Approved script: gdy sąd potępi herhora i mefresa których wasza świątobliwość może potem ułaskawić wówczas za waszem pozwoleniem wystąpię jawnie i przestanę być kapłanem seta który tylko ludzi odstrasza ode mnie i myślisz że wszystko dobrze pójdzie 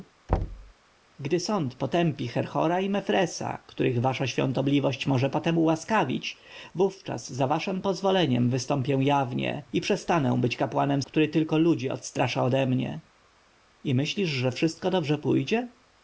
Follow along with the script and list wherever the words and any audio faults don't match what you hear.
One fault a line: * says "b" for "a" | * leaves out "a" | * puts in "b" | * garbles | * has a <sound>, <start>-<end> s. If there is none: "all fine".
* has a thud, 0.3-0.7 s
* leaves out "seta"